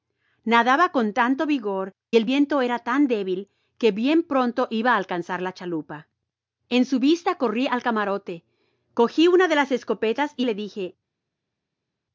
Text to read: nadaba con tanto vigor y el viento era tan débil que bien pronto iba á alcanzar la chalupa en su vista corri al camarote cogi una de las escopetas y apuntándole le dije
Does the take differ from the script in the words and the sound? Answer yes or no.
yes